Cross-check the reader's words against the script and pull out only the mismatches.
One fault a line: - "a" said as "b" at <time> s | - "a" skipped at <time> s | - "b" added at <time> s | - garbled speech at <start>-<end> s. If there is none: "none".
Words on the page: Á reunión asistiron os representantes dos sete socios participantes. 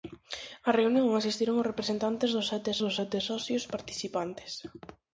- "dos sete" added at 2.8 s